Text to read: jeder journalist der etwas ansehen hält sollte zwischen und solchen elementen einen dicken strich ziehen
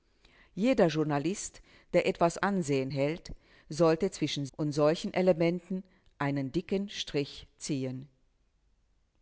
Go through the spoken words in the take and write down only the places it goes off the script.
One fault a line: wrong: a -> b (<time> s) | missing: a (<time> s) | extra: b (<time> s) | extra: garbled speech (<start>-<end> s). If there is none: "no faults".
no faults